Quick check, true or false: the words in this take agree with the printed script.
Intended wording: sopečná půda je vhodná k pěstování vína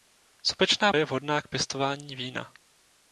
false